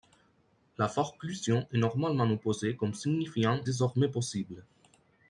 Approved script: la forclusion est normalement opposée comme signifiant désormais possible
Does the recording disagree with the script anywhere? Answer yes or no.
no